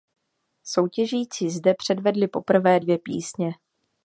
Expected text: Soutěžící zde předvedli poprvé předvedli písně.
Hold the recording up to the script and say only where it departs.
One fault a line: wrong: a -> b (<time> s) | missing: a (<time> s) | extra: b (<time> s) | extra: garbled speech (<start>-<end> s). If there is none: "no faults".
wrong: předvedli -> dvě (2.8 s)